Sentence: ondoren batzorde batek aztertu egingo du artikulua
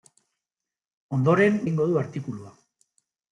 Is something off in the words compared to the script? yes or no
yes